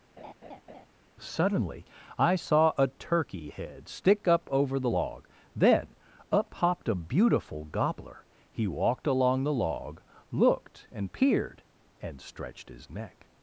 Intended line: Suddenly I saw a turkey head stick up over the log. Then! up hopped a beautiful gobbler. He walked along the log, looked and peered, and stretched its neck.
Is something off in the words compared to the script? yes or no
yes